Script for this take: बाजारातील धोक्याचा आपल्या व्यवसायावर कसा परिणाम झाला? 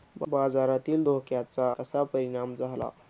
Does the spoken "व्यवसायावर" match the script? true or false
false